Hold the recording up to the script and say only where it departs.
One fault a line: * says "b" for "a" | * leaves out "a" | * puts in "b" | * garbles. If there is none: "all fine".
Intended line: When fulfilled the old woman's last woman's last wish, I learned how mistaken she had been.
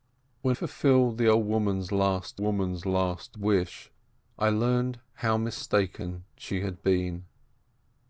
all fine